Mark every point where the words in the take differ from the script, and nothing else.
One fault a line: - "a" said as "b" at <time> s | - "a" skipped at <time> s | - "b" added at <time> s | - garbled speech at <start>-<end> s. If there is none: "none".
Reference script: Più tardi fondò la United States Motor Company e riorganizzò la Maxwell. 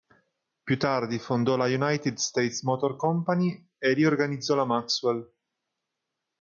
none